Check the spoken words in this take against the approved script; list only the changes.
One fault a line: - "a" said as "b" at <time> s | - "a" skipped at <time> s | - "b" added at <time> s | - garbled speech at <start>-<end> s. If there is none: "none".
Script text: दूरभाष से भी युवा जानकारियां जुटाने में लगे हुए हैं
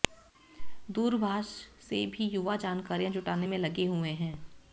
none